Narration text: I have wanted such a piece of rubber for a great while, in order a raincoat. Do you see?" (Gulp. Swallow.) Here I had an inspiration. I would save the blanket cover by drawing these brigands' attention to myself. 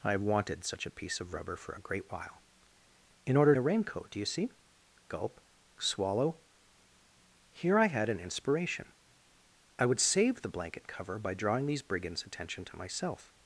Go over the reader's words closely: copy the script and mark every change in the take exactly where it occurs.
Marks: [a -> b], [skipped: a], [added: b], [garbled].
I have wanted such a piece of rubber for a great while, in order a raincoat. Do you see?" (Gulp. Swallow.) Here I had an inspiration. I would save the blanket cover by drawing these brigands' attention to myself.